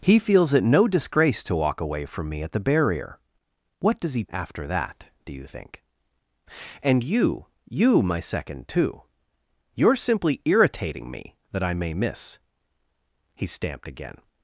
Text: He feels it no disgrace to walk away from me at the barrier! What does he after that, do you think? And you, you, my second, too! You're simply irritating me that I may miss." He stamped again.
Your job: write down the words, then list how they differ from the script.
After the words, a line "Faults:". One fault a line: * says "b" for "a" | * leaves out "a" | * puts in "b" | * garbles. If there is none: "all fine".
He feels it no disgrace to walk away from me at the barrier! What does he after that, do you think? And you, you, my second, too! You're simply irritating me that I may miss." He stamped again.
Faults:
all fine